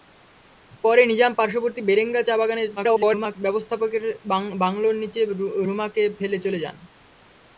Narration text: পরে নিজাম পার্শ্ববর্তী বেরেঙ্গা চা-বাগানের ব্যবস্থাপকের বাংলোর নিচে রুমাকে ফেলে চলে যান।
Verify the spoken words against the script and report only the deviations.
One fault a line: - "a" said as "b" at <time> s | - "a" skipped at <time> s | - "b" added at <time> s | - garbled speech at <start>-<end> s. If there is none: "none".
- garbled speech at 2.8-3.4 s